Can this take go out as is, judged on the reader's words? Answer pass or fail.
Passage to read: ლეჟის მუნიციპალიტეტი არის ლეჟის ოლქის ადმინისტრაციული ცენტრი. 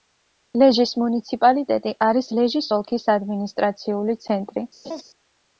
pass